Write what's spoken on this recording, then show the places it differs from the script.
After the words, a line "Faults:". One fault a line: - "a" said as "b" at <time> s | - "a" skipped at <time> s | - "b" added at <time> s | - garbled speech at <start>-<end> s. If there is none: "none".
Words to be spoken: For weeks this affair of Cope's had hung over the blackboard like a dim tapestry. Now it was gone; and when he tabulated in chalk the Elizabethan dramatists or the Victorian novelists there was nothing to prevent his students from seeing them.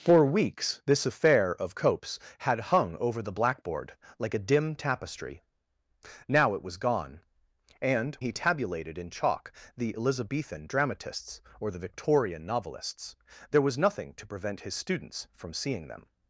For weeks this affair of Cope's had hung over the blackboard like a dim tapestry. Now it was gone; and he tabulated in chalk the Elizabethan dramatists or the Victorian novelists there was nothing to prevent his students from seeing them.
Faults:
- "when" skipped at 8.1 s